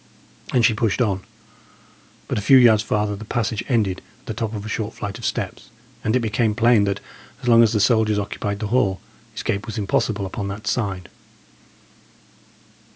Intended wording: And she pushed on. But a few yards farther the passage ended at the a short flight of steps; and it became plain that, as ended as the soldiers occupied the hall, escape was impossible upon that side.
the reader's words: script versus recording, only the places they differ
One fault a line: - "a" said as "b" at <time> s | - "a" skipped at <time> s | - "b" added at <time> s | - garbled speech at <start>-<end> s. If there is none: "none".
- "top of" added at 4.3 s
- "ended" said as "long" at 7.5 s